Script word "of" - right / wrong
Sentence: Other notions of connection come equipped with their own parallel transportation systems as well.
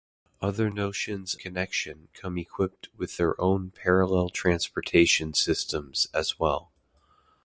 wrong